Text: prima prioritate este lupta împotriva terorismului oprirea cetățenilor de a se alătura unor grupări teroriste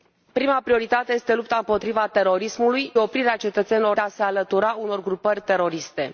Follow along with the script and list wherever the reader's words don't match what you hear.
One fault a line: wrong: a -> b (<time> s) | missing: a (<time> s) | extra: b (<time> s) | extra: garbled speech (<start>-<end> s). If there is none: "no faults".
no faults